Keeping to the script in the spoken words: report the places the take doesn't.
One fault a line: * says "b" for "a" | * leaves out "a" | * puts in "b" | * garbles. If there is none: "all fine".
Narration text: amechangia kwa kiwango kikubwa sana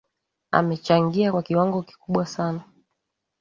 all fine